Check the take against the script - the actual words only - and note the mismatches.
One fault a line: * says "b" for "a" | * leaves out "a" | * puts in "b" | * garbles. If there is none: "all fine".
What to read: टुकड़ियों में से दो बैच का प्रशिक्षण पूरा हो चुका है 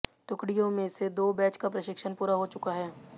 all fine